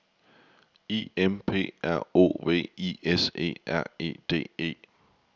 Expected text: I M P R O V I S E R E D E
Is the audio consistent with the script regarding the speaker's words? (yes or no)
yes